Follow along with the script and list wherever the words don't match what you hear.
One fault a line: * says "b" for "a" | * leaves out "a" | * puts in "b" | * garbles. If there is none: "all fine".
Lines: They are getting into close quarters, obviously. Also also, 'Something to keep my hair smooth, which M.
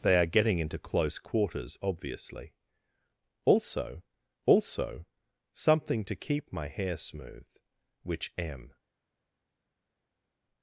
all fine